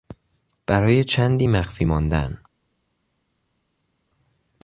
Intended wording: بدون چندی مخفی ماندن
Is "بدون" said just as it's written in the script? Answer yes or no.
no